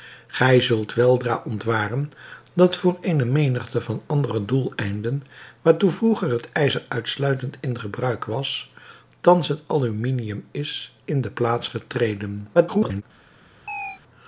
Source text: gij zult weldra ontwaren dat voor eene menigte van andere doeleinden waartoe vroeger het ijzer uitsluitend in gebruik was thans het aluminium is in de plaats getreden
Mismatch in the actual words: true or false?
true